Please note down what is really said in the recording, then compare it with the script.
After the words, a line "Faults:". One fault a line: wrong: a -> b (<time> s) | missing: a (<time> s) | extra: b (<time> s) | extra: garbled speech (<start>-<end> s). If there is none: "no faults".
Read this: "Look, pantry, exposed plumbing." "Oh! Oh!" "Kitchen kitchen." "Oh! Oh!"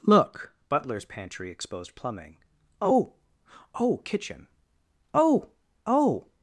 "Look, butler's pantry, exposed plumbing." "Oh! Oh!" "Kitchen." "Oh! Oh!"
Faults:
extra: butler's (0.7 s)
missing: kitchen (4.5 s)